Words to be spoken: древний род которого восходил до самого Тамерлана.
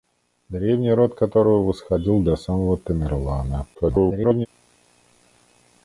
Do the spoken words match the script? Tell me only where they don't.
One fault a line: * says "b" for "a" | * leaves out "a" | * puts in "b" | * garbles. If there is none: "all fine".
* garbles